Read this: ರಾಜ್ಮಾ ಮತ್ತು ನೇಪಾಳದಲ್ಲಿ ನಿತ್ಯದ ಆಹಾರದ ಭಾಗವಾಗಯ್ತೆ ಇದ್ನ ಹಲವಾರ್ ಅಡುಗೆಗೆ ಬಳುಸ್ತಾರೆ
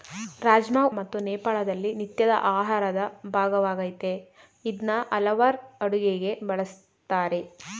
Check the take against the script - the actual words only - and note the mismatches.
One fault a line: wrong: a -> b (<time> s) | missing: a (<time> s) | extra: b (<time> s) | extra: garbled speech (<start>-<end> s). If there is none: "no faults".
no faults